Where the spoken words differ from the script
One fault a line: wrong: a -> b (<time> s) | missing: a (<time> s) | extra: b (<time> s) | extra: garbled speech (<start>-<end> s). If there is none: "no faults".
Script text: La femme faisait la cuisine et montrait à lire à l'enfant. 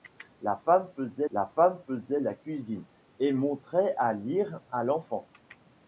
extra: femme faisait la (1.5 s)